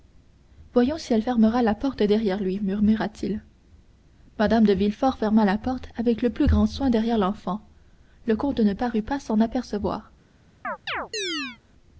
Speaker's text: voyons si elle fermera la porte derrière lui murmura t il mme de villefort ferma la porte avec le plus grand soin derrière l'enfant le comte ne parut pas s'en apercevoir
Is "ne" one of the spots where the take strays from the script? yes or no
no